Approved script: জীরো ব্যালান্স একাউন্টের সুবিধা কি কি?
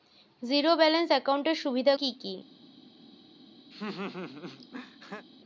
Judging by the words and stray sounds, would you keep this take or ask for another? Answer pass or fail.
fail